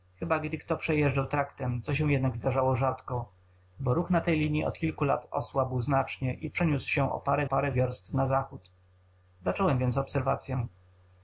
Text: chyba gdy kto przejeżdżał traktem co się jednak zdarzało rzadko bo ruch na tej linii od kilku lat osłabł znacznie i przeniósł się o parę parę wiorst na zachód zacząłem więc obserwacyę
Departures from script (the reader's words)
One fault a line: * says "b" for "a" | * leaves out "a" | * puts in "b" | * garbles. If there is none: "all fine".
all fine